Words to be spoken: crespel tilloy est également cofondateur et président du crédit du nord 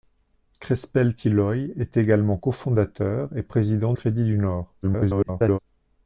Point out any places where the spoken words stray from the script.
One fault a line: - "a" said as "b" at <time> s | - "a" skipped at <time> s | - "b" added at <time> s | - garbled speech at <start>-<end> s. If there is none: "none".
- "du" skipped at 3.9 s
- garbled speech at 4.8-5.6 s